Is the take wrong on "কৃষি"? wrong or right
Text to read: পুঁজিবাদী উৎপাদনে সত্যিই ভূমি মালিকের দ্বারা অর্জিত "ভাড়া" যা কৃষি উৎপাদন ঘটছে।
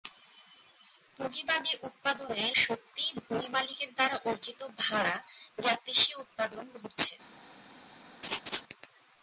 right